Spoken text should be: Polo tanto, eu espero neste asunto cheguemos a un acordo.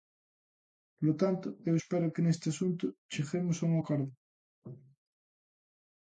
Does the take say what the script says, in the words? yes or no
no